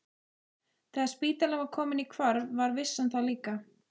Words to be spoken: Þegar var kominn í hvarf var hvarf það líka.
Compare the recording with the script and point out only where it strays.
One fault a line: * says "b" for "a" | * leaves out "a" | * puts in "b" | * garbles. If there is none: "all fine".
* puts in "spítalinn"
* says "vissan" for "hvarf"